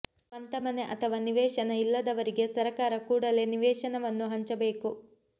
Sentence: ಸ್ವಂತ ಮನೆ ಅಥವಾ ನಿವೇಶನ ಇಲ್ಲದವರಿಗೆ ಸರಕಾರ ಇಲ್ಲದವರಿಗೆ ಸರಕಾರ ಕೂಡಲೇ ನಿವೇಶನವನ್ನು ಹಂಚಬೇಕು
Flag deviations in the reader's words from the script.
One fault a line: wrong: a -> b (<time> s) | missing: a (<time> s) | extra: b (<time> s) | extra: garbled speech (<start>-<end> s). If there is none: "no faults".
missing: ಇಲ್ಲದವರಿಗೆ ಸರಕಾರ (2.9 s)